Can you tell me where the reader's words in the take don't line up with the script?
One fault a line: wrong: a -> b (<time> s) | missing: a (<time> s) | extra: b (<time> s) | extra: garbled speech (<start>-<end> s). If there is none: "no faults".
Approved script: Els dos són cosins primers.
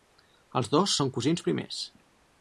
no faults